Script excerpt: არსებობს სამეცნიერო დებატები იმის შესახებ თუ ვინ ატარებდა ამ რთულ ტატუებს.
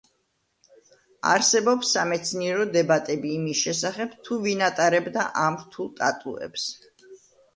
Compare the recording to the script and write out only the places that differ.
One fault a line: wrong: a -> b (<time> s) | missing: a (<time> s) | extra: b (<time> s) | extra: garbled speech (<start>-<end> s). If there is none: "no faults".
no faults